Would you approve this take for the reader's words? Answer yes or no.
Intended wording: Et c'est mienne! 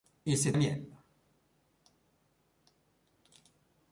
yes